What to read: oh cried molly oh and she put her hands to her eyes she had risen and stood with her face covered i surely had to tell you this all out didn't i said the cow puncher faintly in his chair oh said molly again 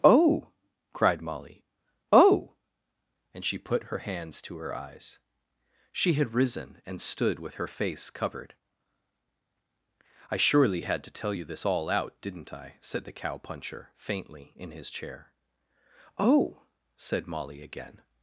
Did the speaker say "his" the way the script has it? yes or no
yes